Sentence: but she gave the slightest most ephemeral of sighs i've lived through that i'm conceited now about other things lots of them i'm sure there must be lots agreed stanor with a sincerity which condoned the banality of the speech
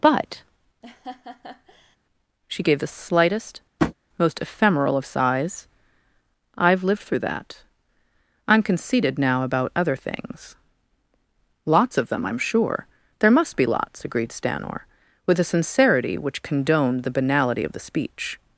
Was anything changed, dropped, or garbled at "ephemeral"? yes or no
no